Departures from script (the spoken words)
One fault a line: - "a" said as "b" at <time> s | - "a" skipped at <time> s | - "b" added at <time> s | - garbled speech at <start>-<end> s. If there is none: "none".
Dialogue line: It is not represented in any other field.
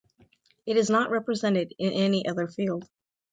none